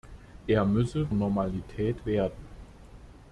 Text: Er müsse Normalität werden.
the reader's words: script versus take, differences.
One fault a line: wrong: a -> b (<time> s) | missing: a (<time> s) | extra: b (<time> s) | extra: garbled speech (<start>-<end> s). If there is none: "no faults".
no faults